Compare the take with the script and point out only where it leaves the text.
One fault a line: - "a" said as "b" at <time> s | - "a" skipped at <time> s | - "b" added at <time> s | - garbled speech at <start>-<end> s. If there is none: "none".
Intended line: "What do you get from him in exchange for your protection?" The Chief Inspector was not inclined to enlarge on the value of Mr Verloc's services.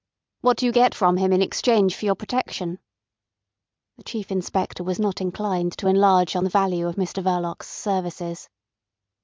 none